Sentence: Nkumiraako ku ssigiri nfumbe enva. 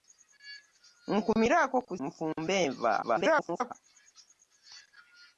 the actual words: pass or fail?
fail